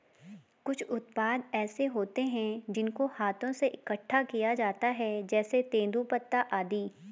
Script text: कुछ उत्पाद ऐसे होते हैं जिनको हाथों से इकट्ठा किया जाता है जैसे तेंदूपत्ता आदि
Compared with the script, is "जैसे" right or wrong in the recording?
right